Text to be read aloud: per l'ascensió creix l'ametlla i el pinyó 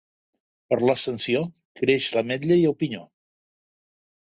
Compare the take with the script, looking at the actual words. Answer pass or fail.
pass